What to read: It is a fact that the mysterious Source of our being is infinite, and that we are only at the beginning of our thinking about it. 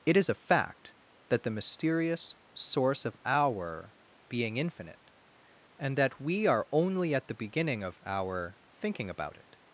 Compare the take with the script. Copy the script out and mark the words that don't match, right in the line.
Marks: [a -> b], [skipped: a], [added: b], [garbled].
It is a fact that the mysterious Source of our being [skipped: is] infinite, and that we are only at the beginning of our thinking about it.